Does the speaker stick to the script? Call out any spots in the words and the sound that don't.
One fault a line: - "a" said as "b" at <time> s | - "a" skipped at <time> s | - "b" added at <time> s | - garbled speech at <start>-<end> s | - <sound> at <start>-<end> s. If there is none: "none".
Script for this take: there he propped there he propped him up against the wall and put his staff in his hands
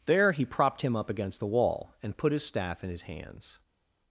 - "there he propped" skipped at 0.8 s